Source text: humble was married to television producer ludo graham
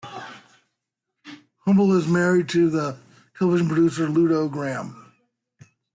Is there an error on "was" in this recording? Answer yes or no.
yes